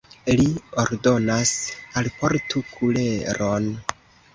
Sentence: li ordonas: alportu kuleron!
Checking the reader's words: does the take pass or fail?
pass